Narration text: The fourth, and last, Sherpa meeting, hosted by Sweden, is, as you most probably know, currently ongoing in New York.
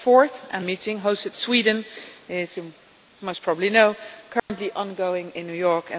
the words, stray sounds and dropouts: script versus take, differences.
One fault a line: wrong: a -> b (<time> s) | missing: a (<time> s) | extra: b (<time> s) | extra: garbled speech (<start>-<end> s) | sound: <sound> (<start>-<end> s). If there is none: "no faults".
missing: last Sherpa (0.7 s)
missing: by (1.3 s)
missing: as (2.6 s)
sound: dropout (4.4-4.5 s)